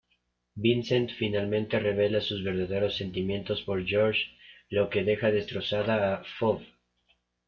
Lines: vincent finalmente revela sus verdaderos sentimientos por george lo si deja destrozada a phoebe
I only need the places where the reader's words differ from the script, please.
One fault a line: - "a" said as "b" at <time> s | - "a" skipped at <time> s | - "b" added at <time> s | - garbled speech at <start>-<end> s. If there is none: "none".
- "si" said as "que" at 4.9 s